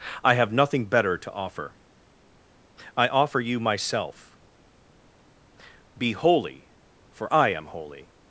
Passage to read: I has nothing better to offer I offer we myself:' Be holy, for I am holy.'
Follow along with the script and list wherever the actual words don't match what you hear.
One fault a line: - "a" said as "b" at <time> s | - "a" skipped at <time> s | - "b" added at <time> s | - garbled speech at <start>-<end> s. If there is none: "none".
- "has" said as "have" at 0.3 s
- "we" said as "you" at 3.4 s